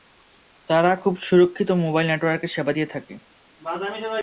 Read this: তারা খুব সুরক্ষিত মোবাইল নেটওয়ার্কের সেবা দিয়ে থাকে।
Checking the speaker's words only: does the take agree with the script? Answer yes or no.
yes